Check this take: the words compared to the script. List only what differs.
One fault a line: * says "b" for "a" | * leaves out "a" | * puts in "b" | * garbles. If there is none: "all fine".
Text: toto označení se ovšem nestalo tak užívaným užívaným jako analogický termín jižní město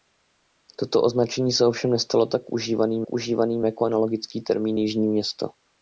all fine